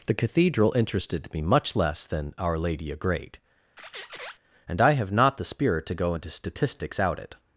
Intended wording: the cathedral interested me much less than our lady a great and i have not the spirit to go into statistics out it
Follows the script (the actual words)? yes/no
yes